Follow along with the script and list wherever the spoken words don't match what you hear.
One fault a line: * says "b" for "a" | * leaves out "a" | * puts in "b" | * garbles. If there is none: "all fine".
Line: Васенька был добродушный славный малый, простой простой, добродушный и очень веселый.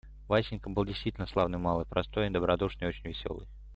* says "действительно" for "добродушный"
* leaves out "простой"